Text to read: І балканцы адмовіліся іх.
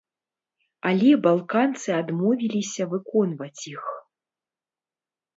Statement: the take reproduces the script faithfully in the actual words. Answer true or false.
false